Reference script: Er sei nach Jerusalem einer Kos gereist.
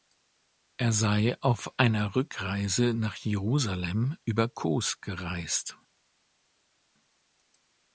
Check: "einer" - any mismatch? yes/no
yes